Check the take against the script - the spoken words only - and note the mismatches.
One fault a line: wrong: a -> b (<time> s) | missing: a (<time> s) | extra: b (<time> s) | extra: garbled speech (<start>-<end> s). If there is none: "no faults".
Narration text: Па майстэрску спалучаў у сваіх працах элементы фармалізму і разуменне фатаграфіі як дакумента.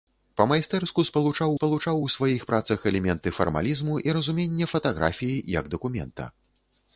extra: спалучаў (1.6 s)